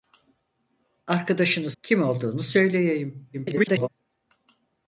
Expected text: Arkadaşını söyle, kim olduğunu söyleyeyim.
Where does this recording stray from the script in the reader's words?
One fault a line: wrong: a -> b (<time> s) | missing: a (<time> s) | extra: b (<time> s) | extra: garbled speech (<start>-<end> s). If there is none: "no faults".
missing: söyle (1.7 s)
extra: garbled speech (3.3-3.9 s)